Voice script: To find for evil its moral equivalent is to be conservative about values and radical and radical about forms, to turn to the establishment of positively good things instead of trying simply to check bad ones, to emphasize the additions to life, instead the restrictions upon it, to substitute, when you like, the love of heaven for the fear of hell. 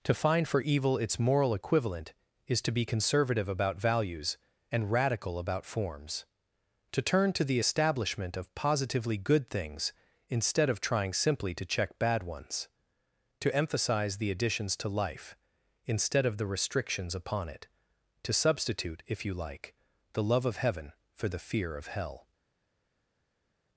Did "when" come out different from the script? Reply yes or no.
yes